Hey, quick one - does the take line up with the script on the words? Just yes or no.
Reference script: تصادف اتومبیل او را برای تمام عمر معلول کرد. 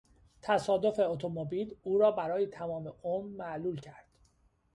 yes